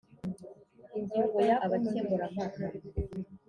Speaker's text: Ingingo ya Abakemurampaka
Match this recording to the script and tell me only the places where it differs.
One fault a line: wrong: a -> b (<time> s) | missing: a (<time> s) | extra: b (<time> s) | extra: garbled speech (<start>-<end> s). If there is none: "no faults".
no faults